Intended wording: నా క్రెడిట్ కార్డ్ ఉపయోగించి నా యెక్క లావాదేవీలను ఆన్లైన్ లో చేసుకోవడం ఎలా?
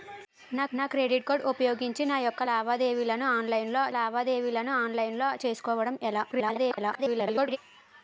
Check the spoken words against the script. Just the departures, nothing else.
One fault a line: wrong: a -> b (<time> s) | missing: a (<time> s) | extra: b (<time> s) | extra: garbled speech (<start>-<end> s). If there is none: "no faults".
extra: నా (0.7 s)
extra: లావాదేవీలను ఆన్లైన్ లో (3.9 s)
extra: garbled speech (6.3-7.6 s)